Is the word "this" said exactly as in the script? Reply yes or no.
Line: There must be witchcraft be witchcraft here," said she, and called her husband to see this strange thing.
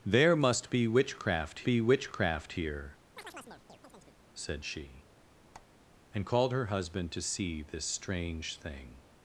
yes